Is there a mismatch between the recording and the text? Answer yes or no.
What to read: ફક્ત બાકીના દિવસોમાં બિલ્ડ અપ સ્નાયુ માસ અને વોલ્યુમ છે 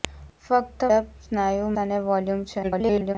yes